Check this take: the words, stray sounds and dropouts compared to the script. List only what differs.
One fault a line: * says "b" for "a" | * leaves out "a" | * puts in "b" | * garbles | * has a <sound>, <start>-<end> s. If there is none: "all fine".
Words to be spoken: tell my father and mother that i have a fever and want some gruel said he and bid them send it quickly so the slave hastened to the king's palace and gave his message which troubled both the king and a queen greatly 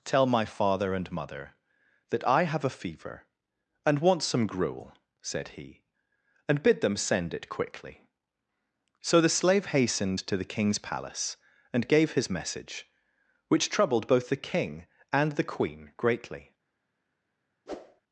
* says "the" for "a"
* has a whoosh, 17.7-18.0 s